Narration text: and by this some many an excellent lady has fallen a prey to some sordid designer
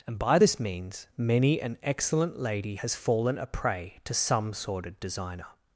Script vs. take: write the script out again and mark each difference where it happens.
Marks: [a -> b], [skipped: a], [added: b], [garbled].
and by this [some -> means] many an excellent lady has fallen a prey to some sordid designer